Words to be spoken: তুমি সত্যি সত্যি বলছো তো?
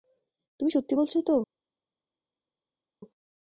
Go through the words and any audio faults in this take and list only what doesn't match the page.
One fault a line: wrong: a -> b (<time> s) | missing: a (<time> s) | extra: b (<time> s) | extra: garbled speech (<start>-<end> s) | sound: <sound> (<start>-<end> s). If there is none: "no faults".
missing: সত্যি (0.9 s)